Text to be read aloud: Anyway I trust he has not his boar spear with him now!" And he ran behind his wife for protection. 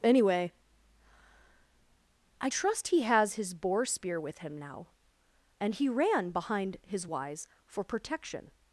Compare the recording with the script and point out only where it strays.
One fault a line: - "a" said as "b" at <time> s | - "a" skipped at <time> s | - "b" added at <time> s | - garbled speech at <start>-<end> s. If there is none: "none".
- "not" skipped at 3.3 s
- "wife" said as "wise" at 7.0 s